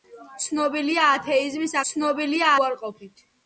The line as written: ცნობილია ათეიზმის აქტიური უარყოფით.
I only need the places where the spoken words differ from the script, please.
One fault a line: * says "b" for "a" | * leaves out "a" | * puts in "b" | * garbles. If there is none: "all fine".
* says "ცნობილია" for "აქტიური"